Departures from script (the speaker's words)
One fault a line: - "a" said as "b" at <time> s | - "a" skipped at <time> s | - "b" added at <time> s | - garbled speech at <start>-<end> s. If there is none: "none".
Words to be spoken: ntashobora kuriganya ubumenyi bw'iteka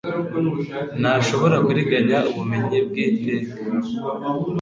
none